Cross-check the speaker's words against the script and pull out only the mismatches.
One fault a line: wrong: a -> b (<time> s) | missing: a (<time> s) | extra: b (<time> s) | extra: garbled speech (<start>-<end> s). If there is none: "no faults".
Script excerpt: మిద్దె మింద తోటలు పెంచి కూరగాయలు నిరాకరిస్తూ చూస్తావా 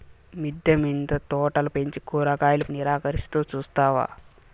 no faults